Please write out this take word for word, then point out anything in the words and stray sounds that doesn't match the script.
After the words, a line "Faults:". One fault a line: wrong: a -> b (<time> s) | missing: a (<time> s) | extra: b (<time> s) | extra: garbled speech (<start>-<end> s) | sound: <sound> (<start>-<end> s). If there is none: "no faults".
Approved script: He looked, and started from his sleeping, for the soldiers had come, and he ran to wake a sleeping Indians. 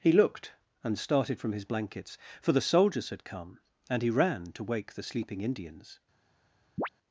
He looked, and started from his blankets, for the soldiers had come, and he ran to wake the sleeping Indians.
Faults:
wrong: sleeping -> blankets (1.6 s)
wrong: a -> the (4.9 s)
sound: chirp (6.8-6.9 s)